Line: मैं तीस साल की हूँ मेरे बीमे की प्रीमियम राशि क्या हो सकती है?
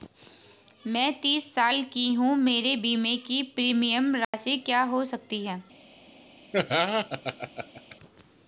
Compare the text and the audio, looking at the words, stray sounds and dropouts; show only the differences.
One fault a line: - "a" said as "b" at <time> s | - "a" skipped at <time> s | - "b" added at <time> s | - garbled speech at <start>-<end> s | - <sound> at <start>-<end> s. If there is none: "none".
- dropout at 4.2-4.3 s
- laugh at 6.5-8.0 s